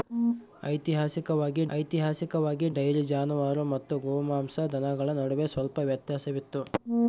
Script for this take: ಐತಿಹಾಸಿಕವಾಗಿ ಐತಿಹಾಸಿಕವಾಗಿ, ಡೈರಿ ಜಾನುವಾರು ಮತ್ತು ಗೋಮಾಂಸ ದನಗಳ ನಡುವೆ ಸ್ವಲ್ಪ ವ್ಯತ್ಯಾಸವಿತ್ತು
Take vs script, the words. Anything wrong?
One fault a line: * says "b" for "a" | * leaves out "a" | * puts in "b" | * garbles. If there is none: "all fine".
all fine